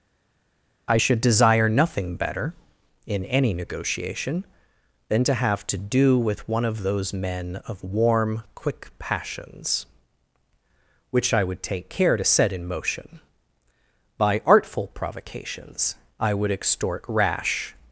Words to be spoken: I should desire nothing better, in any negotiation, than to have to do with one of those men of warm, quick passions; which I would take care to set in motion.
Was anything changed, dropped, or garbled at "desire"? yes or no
no